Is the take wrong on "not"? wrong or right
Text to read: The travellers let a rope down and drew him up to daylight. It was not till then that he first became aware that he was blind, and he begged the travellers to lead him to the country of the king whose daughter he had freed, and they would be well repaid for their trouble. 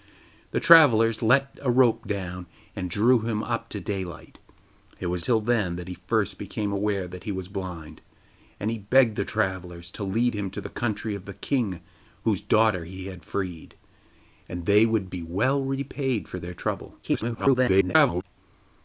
wrong